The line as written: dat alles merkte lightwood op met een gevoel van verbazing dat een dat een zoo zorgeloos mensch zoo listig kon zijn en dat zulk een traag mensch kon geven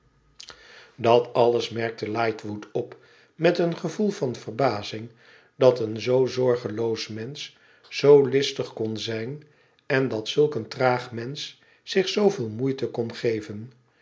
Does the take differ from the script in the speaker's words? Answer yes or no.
yes